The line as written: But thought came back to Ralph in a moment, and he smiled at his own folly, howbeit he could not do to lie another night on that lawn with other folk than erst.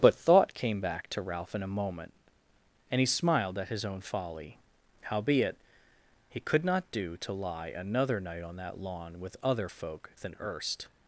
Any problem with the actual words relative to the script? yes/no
no